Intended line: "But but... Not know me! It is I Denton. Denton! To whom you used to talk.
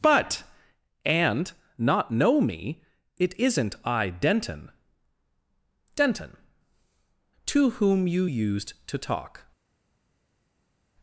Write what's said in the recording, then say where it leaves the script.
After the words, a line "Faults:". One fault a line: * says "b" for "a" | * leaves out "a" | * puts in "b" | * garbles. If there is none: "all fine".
"But and... Not know me! It isn't I Denton. Denton! To whom you used to talk.
Faults:
* says "and" for "but"
* says "isn't" for "is"